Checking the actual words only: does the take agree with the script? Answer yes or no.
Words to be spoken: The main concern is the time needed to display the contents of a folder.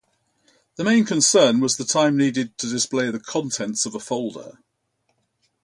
no